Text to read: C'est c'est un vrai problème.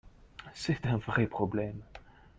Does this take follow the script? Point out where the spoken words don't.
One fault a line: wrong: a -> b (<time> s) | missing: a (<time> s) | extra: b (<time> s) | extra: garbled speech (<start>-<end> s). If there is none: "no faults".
missing: c'est (0.9 s)